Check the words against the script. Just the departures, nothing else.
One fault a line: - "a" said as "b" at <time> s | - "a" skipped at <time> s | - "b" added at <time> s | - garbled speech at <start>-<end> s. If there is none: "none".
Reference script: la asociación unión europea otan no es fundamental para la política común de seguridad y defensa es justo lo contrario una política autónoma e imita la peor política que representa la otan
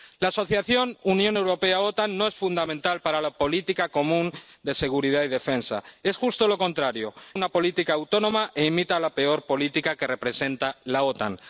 none